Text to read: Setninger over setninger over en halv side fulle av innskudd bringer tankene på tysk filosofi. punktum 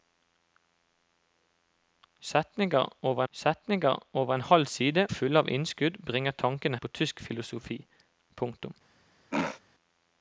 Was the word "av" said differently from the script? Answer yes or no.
no